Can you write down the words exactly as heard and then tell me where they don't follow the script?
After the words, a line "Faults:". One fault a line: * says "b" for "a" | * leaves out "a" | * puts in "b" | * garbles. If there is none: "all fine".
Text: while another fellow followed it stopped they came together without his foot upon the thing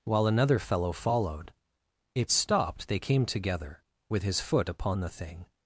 while another fellow followed it stopped they came together with his foot upon the thing
Faults:
* says "with" for "without"